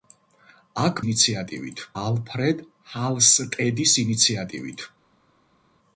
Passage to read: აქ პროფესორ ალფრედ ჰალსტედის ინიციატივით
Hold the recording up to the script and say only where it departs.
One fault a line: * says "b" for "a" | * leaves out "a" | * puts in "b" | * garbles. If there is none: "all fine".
* says "ინიციატივით" for "პროფესორ"